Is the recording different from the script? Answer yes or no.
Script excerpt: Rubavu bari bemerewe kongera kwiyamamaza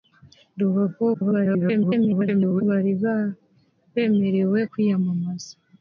yes